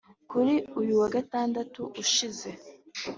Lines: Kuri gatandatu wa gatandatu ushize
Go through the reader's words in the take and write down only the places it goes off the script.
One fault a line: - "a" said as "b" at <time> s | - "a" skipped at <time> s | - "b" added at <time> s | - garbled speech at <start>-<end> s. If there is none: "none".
- "gatandatu" said as "uyu" at 0.8 s